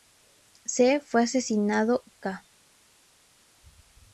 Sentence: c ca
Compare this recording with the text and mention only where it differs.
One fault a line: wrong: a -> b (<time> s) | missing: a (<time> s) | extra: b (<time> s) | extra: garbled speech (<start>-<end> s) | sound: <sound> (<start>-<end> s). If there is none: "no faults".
extra: fue asesinado (1.0 s)